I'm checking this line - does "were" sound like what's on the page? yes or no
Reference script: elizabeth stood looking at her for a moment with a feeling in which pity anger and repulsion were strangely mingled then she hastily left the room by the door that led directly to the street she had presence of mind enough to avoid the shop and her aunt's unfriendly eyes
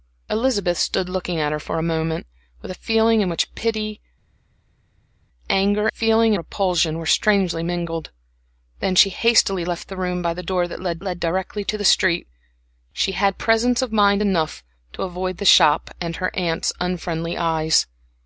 yes